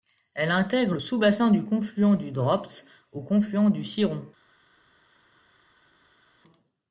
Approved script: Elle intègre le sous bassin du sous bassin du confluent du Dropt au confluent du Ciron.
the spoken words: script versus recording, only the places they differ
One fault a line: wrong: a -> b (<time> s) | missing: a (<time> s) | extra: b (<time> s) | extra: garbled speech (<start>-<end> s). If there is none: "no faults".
missing: sous bassin du (1.6 s)